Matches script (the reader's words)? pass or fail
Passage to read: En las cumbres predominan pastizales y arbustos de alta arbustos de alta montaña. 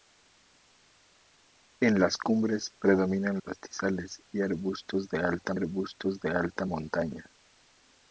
pass